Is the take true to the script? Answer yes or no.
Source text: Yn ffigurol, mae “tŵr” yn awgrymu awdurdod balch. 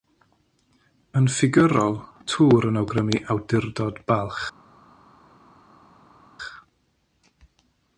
no